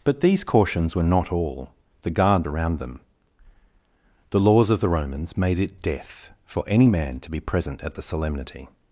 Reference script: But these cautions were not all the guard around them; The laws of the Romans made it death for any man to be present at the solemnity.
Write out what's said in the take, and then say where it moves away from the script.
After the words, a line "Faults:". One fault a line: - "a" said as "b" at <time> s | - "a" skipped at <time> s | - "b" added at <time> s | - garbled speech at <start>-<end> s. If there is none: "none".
But these cautions were not all the guard around them; The laws of the Romans made it death for any man to be present at the solemnity.
Faults:
none